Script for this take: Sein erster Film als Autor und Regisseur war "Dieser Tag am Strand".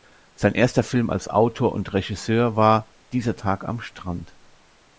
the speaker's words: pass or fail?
pass